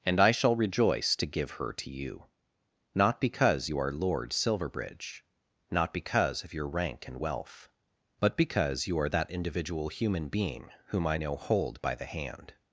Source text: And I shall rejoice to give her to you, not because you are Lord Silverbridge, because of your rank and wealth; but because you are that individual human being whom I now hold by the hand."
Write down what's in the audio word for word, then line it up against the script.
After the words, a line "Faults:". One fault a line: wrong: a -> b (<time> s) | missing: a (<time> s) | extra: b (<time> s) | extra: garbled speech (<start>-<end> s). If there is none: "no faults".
And I shall rejoice to give her to you, not because you are Lord Silverbridge, not because of your rank and wealth; but because you are that individual human being whom I now hold by the hand."
Faults:
extra: not (5.7 s)